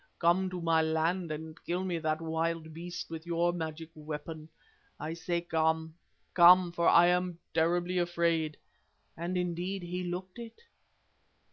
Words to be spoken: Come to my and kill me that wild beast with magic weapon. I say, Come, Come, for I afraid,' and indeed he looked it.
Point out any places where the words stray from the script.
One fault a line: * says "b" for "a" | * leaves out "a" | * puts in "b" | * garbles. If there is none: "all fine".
* puts in "land"
* puts in "your"
* puts in "am terribly"